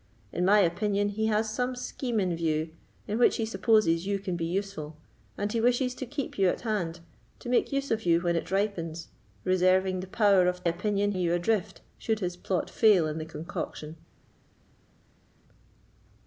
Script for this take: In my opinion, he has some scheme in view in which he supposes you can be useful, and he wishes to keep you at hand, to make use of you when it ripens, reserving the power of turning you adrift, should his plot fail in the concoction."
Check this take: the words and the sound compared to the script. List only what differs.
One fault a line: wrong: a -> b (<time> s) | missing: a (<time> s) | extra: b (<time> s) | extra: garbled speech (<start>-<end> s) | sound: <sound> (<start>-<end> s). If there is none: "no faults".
wrong: turning -> opinion (10.6 s)